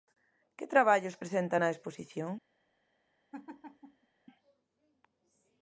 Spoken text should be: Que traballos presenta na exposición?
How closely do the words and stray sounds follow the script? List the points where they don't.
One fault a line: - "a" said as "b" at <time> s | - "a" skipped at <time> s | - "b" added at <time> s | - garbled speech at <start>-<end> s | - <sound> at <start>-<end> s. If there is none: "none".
- laugh at 3.3-4.1 s